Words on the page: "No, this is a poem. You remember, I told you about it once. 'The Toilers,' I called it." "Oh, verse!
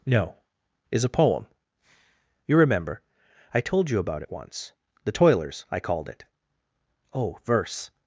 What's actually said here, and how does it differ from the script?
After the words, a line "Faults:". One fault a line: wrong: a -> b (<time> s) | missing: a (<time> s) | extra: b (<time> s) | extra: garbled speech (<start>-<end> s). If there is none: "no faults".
"No, is a poem. You remember, I told you about it once. 'The Toilers,' I called it." "Oh, verse!
Faults:
missing: this (0.4 s)